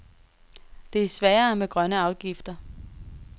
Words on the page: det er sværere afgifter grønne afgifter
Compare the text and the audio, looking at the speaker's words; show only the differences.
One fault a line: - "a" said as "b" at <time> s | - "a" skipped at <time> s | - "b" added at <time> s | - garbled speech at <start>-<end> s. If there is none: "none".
- "afgifter" said as "med" at 1.6 s